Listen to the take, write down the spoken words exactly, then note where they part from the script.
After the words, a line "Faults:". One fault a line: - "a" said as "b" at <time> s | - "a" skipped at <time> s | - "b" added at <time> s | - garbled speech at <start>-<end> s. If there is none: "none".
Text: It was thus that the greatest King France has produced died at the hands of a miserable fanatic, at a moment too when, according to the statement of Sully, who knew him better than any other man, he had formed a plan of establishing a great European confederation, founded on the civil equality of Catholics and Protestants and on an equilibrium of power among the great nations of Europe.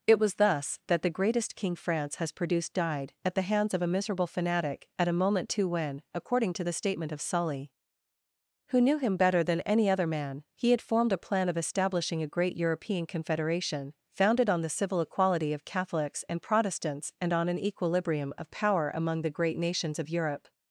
It was thus that the greatest King France has produced died at the hands of a miserable fanatic, at a moment too when, according to the statement of Sully, who knew him better than any other man, he had formed a plan of establishing a great European confederation, founded on the civil equality of Catholics and Protestants and on an equilibrium of power among the great nations of Europe.
Faults:
none